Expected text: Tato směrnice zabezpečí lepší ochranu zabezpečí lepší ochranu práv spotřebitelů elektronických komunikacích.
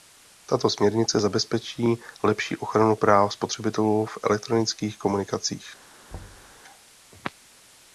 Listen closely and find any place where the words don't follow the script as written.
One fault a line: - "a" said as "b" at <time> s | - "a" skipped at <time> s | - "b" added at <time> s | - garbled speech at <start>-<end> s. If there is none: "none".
- "zabezpečí lepší ochranu" skipped at 3.0 s
- "v" added at 4.1 s